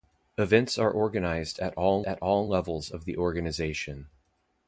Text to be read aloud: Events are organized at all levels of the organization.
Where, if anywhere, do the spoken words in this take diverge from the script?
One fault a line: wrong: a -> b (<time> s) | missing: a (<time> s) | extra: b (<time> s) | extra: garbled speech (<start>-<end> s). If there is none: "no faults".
extra: at all (2.0 s)